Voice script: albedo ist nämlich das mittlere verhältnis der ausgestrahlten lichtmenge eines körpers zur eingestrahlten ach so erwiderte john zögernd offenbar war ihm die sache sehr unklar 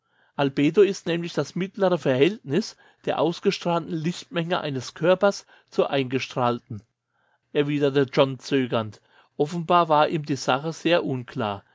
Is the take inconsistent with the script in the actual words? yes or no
yes